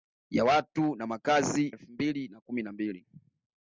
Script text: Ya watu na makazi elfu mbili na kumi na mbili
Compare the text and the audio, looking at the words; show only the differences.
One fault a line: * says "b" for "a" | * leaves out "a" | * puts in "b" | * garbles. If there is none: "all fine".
all fine